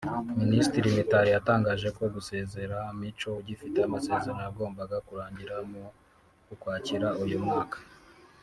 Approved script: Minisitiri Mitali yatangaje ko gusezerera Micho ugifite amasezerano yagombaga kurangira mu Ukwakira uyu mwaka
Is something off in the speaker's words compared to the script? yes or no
no